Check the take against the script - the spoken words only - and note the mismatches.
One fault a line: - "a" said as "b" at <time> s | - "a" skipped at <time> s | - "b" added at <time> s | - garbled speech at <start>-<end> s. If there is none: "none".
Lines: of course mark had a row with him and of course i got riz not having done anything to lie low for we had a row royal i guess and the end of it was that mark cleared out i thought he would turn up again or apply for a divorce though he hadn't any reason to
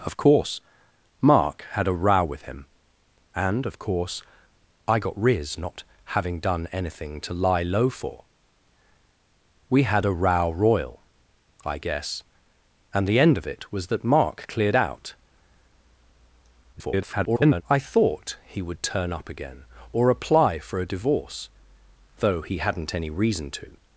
- garbled speech at 16.7-17.6 s